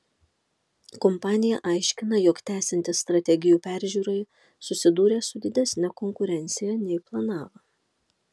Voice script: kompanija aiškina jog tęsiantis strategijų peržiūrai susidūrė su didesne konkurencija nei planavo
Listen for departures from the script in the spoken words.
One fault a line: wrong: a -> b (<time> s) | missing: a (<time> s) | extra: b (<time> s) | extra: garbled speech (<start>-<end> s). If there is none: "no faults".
no faults